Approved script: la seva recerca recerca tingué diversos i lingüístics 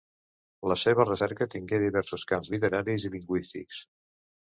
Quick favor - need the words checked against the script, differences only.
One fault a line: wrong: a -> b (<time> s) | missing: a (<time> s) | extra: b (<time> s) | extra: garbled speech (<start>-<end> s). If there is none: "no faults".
missing: recerca (1.5 s)
extra: camps literaris (2.4 s)